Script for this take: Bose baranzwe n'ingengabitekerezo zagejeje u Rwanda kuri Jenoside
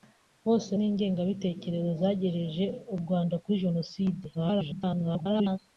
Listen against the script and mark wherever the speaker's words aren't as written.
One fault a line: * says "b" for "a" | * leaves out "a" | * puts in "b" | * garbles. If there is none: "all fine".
* leaves out "baranzwe"
* garbles